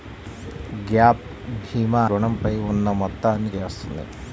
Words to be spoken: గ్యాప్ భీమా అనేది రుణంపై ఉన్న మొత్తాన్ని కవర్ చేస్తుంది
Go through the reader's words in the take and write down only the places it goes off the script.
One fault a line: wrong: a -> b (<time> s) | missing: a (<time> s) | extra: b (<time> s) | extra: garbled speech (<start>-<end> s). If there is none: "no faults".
missing: అనేది (2.0 s)
missing: కవర్ (3.5 s)